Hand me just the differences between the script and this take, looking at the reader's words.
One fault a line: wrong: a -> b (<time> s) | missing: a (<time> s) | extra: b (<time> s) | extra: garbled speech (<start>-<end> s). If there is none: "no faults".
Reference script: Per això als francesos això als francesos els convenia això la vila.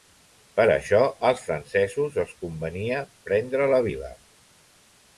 missing: això als francesos (2.2 s)
wrong: això -> prendre (3.3 s)